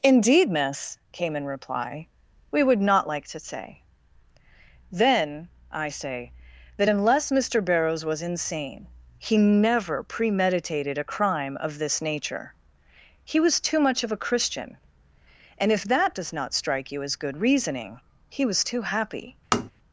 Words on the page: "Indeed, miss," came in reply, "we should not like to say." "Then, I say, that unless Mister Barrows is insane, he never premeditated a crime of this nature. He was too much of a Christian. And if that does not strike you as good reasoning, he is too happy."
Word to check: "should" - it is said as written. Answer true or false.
false